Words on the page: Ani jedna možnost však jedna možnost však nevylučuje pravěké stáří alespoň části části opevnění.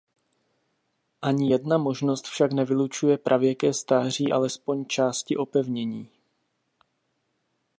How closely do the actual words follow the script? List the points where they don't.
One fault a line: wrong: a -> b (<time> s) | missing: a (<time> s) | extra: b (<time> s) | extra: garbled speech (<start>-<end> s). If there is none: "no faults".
missing: jedna možnost však (2.5 s)
missing: části (5.4 s)